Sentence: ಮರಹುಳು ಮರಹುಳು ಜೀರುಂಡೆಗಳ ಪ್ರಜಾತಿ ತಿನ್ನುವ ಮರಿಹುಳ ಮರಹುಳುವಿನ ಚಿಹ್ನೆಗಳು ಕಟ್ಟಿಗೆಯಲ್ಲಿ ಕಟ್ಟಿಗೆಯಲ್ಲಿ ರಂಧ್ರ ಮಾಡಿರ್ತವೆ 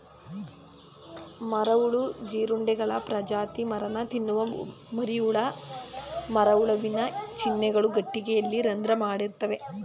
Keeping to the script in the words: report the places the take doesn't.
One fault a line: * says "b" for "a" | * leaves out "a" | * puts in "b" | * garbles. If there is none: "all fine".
* leaves out "ಮರಹುಳು"
* puts in "ಮರನ"
* leaves out "ಕಟ್ಟಿಗೆಯಲ್ಲಿ"